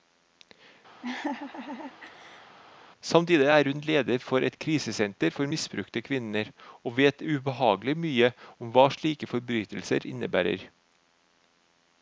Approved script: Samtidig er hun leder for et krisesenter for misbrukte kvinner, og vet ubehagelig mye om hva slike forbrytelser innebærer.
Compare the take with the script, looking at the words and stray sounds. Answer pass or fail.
fail